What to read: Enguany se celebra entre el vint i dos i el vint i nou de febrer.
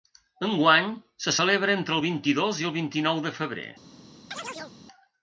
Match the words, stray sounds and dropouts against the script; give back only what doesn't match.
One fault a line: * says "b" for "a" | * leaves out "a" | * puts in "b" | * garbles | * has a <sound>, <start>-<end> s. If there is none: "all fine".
* has a chirp, 4.3-4.8 s